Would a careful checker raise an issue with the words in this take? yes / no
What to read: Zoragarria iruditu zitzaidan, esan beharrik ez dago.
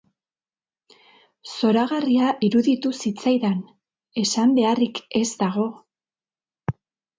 no